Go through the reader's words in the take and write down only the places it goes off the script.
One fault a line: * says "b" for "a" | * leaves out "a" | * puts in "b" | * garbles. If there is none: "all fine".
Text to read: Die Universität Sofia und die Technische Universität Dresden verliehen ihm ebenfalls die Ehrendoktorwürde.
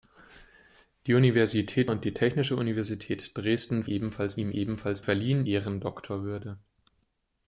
* leaves out "Sofia"
* says "ebenfalls" for "verliehen"
* says "verliehen" for "die"